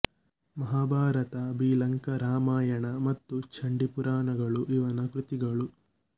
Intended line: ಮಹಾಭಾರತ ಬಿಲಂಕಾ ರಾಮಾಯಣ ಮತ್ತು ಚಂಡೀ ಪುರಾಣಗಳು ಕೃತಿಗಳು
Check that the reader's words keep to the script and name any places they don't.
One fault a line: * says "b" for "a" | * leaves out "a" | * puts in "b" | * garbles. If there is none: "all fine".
* puts in "ಇವನ"